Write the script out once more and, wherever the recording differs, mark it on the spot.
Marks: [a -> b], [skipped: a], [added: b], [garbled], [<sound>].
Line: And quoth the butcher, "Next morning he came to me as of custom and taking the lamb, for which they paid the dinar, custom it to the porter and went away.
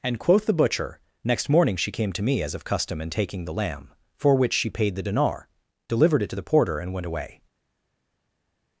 And quoth the butcher, "Next morning [he -> she] came to me as of custom and taking the lamb, for which [they -> she] paid the dinar, [custom -> delivered] it to the porter and went away.